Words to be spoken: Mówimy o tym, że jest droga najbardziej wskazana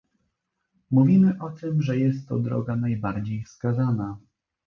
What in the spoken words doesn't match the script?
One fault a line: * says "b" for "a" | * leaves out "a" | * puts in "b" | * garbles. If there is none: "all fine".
* puts in "to"